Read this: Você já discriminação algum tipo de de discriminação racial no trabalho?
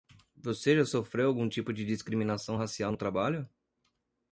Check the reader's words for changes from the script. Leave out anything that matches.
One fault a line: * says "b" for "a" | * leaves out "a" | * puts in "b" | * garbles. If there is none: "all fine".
* says "sofreu" for "discriminação"
* leaves out "de"